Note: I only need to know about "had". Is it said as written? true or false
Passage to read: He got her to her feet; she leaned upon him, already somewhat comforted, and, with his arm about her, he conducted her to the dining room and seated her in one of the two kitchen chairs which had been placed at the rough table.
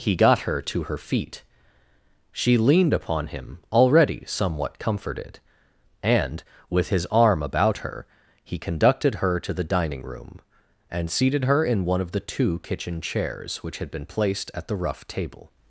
true